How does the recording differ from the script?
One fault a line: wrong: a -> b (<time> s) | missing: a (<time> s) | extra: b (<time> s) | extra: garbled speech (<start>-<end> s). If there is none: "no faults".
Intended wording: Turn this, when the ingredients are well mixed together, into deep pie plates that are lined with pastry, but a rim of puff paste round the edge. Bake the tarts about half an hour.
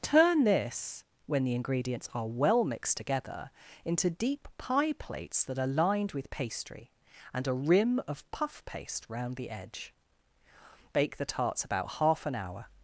wrong: but -> and (7.3 s)